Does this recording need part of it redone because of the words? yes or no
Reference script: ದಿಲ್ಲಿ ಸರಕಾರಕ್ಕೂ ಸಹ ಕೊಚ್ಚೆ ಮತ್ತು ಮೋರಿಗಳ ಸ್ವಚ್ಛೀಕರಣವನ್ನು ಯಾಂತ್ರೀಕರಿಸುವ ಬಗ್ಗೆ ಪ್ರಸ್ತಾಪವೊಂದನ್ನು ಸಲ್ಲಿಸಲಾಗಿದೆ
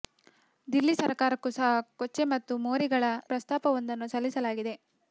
yes